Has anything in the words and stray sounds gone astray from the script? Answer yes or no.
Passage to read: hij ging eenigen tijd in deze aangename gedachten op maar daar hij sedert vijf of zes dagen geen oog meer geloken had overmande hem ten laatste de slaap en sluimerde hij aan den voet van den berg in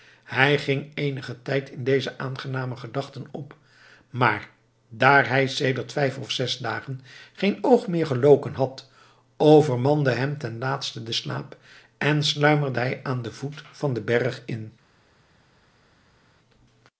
no